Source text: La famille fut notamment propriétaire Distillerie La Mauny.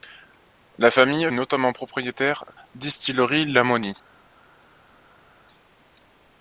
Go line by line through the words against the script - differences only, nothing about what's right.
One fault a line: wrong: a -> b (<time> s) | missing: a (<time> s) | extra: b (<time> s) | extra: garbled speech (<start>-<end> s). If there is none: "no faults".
missing: fut (1.3 s)